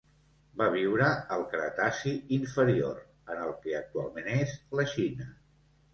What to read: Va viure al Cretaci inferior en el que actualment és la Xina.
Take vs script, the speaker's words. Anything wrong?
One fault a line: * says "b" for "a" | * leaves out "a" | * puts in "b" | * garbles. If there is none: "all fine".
all fine